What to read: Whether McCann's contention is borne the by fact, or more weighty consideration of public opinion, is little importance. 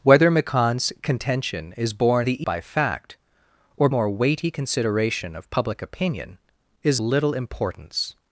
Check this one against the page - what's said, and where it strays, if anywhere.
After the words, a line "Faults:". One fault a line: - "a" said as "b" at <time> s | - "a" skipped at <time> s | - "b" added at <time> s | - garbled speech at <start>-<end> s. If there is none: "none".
Whether McCann's contention is borne the by fact, or more weighty consideration of public opinion, is little importance.
Faults:
none